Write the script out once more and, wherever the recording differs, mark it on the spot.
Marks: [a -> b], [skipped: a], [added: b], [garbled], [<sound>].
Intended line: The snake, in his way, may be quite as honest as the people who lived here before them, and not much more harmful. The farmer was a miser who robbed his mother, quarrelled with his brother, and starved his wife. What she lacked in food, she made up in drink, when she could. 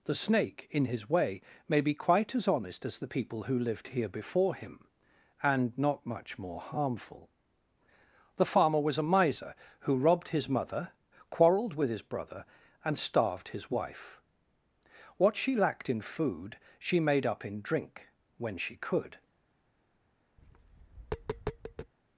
The snake, in his way, may be quite as honest as the people who lived here before [them, -> him] and not much more harmful. The farmer was a miser who robbed his mother, quarrelled with his brother, and starved his wife. What she lacked in food, she made up in drink, when she could. [tap]